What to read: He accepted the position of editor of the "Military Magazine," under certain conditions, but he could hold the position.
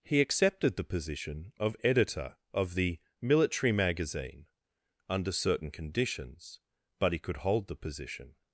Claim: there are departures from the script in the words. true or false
false